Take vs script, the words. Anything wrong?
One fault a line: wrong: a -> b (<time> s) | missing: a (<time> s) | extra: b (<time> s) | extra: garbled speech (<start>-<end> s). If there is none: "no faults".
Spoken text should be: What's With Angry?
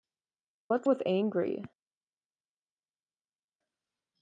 no faults